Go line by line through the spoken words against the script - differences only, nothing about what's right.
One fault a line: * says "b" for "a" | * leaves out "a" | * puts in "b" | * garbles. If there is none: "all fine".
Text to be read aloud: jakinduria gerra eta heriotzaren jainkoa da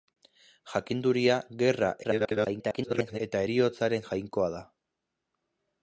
* garbles